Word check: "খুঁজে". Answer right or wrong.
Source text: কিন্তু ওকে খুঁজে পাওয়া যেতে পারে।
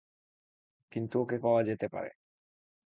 wrong